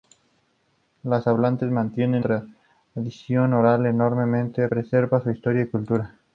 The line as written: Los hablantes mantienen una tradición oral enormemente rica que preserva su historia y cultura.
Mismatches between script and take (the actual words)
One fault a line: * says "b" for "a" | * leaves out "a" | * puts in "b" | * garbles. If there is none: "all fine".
* leaves out "una"
* leaves out "rica que"